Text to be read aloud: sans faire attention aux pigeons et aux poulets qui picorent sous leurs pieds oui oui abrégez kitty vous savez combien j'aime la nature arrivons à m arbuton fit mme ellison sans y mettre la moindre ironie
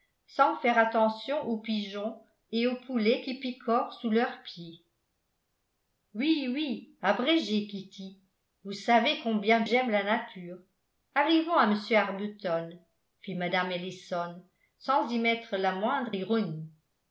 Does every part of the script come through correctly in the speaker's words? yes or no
yes